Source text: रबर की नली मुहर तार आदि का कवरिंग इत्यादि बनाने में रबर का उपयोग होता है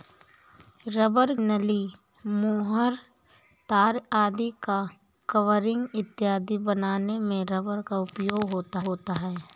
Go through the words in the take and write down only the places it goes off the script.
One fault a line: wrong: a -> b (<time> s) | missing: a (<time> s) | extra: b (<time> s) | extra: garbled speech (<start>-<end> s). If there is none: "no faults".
missing: की (1.4 s)
extra: होता (8.8 s)